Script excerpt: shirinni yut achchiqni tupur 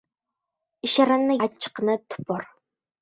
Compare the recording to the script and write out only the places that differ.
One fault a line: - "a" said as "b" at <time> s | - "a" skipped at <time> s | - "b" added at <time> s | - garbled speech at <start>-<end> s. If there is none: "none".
- "yut" skipped at 1.4 s